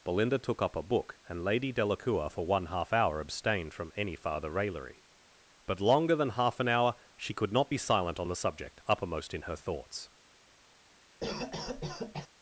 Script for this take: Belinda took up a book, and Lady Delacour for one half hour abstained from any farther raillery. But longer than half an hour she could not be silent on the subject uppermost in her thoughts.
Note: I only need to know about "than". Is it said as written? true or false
true